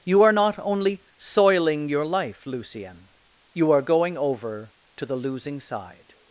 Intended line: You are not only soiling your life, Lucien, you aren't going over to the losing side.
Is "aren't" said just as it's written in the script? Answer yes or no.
no